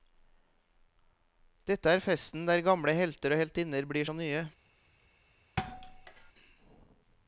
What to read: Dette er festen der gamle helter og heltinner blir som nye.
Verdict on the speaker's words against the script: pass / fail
pass